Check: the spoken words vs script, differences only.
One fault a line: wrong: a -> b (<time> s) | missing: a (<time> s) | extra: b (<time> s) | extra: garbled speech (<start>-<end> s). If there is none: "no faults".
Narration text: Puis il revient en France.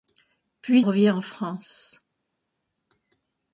missing: il (0.8 s)